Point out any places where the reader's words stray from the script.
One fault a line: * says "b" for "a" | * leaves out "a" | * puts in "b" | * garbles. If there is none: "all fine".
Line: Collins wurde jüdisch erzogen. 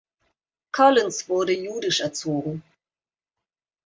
all fine